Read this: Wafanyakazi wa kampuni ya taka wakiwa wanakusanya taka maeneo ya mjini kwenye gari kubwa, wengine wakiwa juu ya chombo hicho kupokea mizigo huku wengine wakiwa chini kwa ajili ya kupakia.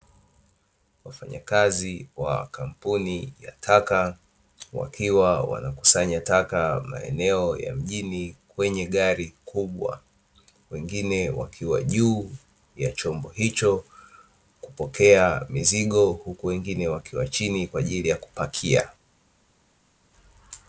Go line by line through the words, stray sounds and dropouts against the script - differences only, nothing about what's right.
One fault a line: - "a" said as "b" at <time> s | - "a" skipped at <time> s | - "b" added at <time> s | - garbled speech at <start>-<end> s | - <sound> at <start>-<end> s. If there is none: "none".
none